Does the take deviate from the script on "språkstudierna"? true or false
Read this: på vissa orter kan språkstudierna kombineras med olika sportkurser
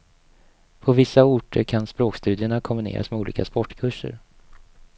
false